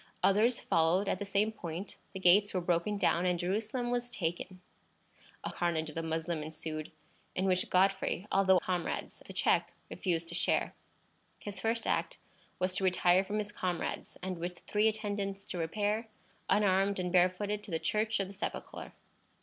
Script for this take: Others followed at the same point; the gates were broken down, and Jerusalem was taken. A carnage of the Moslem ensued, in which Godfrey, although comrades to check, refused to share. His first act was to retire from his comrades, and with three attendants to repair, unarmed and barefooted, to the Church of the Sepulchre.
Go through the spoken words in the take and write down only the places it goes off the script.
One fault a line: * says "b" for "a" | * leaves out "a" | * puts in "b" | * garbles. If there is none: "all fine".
all fine